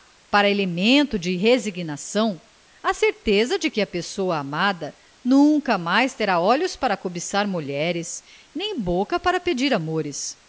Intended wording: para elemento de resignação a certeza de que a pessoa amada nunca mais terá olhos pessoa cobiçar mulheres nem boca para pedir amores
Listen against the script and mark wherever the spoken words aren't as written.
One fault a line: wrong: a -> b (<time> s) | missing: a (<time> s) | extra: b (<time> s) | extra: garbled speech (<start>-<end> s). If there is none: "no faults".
wrong: pessoa -> para (6.8 s)